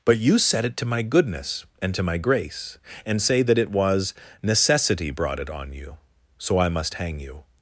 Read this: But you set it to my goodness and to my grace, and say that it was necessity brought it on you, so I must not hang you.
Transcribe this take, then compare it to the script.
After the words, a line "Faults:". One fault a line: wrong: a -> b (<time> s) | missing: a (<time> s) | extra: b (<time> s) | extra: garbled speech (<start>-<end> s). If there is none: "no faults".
But you set it to my goodness and to my grace, and say that it was necessity brought it on you, so I must hang you.
Faults:
missing: not (6.9 s)